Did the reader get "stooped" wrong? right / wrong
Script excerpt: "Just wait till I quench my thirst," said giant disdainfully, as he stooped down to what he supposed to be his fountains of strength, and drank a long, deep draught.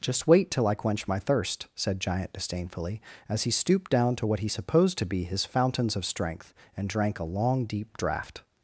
right